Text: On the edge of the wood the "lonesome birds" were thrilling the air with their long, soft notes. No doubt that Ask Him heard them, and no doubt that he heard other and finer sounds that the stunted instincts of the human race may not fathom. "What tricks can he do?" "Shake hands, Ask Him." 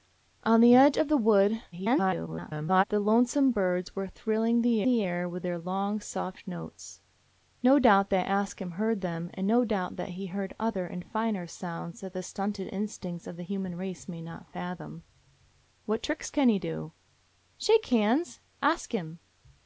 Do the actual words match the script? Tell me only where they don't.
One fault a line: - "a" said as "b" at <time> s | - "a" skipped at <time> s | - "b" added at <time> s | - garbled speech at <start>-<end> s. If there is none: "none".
- garbled speech at 1.7-2.8 s
- "the" added at 4.8 s